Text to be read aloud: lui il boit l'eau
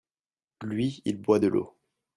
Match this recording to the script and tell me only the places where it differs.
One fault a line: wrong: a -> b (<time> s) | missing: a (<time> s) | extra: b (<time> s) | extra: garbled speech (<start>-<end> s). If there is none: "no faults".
extra: de (1.4 s)